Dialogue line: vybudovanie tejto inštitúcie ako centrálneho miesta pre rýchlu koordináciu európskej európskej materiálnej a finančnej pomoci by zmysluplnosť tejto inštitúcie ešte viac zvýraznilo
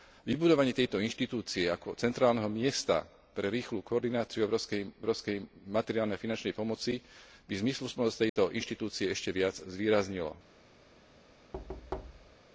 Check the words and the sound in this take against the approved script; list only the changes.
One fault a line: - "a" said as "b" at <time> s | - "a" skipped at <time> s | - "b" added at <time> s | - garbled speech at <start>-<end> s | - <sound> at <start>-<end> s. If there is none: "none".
- dropout at 8.3-8.4 s
- thud at 11.5-12.4 s